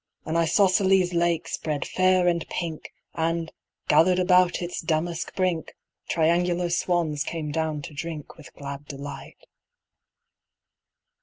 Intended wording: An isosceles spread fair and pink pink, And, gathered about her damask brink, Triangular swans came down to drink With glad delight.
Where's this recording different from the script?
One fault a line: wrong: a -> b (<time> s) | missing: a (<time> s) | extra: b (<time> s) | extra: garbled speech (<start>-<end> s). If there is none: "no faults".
extra: lake (1.1 s)
missing: pink (2.9 s)
wrong: her -> its (4.6 s)